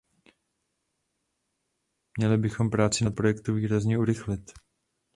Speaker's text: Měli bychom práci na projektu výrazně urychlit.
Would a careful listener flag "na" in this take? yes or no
no